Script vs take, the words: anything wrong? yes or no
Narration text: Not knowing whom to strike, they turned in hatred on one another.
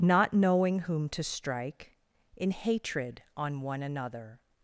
yes